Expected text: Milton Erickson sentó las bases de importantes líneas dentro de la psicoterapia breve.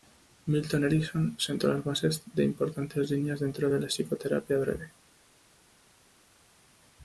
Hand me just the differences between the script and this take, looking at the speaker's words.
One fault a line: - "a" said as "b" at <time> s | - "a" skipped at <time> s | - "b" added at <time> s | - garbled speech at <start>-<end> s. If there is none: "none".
none